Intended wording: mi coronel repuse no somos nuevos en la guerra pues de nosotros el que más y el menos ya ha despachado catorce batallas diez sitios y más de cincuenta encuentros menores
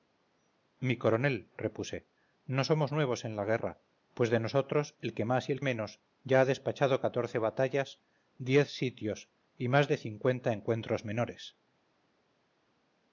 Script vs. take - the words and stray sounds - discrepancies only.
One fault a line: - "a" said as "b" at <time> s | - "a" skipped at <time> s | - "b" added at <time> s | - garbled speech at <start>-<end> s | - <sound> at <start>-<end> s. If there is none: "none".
none